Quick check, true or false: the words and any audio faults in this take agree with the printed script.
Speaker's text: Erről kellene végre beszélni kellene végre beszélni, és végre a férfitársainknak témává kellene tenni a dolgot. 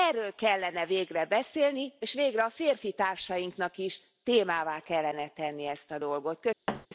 false